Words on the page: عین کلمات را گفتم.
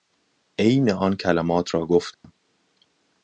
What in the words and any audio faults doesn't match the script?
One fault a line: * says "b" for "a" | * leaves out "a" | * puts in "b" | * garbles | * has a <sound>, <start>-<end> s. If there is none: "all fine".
* puts in "آن"
* has a dropout, 2.1-2.2 s